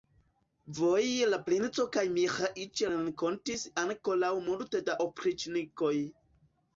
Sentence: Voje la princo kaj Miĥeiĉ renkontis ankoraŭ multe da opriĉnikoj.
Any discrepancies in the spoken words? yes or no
no